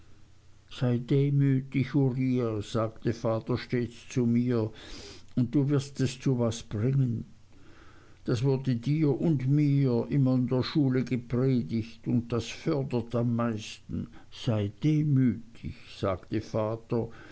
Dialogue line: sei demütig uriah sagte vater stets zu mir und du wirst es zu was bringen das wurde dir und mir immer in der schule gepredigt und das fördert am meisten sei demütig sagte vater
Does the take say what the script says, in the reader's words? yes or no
yes